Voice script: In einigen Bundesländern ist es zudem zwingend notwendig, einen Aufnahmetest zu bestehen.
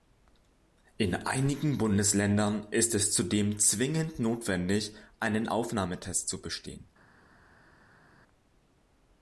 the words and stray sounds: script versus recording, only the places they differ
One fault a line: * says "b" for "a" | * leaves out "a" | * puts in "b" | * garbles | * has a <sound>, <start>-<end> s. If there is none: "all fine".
all fine